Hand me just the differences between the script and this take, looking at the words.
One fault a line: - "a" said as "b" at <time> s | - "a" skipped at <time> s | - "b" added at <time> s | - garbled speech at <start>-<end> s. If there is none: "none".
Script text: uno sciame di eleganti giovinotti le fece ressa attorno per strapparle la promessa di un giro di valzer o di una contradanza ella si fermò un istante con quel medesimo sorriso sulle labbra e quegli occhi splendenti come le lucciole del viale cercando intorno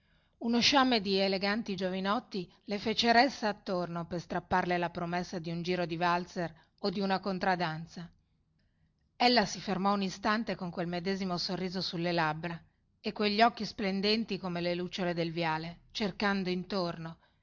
none